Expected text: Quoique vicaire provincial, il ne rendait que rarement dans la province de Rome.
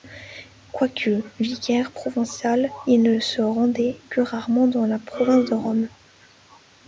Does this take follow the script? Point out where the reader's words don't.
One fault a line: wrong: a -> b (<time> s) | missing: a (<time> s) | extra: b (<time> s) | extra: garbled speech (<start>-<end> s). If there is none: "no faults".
extra: se (3.2 s)